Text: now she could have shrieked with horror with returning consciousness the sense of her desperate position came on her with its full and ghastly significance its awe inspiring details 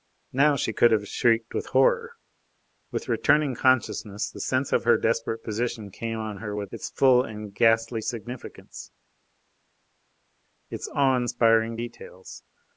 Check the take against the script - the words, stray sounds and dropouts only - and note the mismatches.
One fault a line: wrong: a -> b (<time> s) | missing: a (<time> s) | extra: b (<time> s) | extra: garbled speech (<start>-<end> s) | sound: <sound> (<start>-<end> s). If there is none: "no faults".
no faults